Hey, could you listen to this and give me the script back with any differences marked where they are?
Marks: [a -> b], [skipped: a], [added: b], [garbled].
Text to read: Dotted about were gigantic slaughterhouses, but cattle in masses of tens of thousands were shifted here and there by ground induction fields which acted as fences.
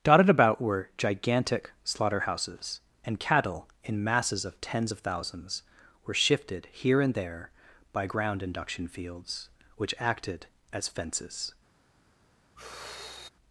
Dotted about were gigantic slaughterhouses, [but -> and] cattle in masses of tens of thousands were shifted here and there by ground induction fields which acted as fences.